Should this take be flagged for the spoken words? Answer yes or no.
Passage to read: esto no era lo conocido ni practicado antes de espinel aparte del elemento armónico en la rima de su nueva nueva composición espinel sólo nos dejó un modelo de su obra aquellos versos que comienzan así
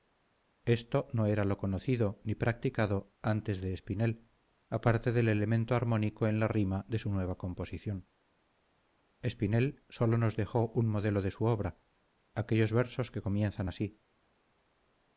yes